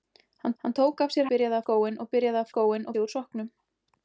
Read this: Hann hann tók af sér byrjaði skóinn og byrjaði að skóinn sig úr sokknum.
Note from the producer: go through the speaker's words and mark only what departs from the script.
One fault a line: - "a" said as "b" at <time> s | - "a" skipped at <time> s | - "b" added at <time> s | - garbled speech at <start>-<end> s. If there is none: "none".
none